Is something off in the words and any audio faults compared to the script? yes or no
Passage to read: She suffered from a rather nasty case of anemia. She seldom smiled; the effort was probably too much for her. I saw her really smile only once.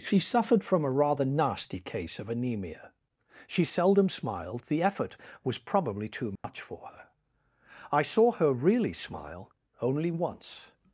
yes